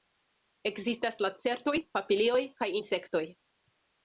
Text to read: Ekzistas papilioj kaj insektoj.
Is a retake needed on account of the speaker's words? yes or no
yes